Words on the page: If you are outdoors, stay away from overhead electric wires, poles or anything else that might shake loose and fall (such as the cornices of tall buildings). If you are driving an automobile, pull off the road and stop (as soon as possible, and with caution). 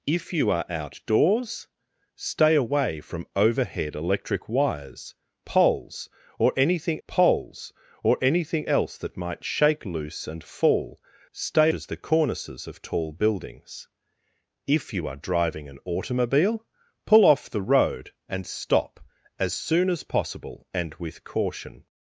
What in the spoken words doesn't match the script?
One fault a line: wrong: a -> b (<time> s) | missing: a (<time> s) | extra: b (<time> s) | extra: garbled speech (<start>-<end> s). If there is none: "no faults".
extra: poles or anything (7.1 s)
wrong: such -> stay (11.3 s)